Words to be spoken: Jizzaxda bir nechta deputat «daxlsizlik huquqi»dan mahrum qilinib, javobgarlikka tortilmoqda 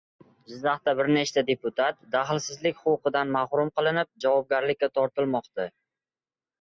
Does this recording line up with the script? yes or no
yes